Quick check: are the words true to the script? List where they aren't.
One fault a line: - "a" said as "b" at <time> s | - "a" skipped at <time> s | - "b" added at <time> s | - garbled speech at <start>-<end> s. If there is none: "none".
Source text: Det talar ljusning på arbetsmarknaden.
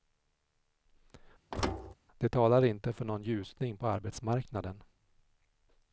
- "inte för någon" added at 2.6 s